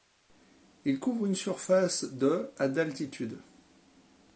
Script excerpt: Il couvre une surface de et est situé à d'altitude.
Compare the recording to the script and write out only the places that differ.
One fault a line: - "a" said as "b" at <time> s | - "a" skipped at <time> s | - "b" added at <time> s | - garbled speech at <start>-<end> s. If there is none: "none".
- "et est situé" skipped at 2.5 s